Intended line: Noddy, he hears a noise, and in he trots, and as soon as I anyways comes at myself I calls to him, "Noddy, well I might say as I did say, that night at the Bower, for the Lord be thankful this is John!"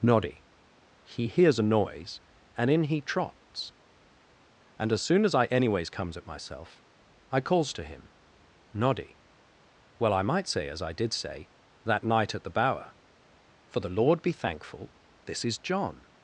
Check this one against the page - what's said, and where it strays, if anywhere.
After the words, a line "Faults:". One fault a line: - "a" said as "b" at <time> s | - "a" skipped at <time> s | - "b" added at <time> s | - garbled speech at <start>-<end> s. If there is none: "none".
Noddy, he hears a noise, and in he trots, and as soon as I anyways comes at myself I calls to him, "Noddy, well I might say as I did say, that night at the Bower, for the Lord be thankful this is John!"
Faults:
none